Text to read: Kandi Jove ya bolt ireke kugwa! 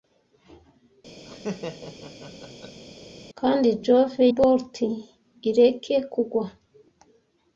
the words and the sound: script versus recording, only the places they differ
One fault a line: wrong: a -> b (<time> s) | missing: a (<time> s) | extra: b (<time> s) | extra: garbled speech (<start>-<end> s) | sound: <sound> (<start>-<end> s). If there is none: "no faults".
sound: laugh (1.3-2.8 s)
missing: ya (4.2 s)